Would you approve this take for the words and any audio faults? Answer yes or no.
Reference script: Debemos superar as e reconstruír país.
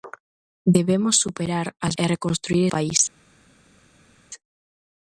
yes